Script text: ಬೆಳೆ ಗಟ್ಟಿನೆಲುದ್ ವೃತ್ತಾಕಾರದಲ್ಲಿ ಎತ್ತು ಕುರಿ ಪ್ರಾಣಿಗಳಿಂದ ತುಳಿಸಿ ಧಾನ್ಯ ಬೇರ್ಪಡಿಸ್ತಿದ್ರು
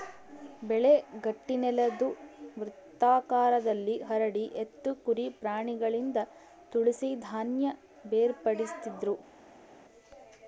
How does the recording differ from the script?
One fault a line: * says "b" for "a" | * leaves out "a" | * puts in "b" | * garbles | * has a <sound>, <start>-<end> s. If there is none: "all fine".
* puts in "ಹರಡಿ"